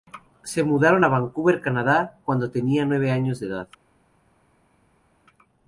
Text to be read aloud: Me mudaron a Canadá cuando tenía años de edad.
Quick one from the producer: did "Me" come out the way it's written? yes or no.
no